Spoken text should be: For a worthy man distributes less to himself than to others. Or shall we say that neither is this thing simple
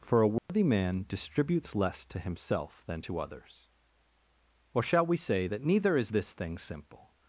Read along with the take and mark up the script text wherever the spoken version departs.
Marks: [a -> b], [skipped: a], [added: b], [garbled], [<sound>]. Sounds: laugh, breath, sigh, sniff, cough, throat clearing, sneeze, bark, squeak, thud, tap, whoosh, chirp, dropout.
For a worthy [dropout] man distributes less to himself than to others. Or shall we say that neither is this thing simple